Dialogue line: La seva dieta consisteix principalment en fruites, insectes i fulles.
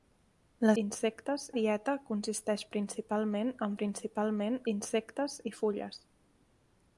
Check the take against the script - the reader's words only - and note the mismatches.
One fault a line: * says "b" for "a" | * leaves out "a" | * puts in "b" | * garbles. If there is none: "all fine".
* says "insectes" for "seva"
* says "principalment" for "fruites"